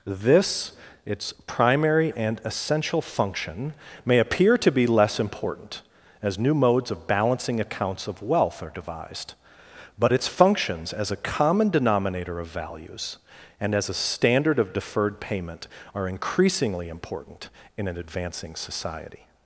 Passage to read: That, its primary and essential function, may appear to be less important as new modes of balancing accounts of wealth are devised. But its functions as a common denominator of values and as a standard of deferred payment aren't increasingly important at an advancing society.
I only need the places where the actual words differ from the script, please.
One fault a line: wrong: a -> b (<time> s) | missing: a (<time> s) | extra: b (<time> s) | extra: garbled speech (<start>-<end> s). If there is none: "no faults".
wrong: That -> This (0.1 s)
wrong: aren't -> are (15.9 s)
wrong: at -> in (17.8 s)